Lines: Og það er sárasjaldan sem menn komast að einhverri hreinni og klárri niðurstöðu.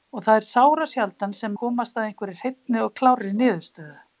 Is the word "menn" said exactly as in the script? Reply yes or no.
no